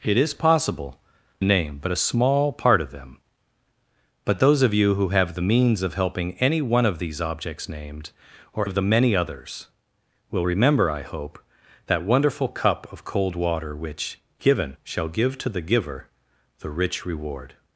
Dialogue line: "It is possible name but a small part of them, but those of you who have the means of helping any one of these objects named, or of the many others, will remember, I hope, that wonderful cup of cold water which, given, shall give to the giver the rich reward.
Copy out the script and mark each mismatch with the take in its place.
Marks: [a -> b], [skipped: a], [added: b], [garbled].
"It is possible name but a small part of them, but those of you who have the means of helping any one of these objects named, or of the many others, will remember, I hope, that wonderful cup of cold water which, given, shall give to the giver the rich reward.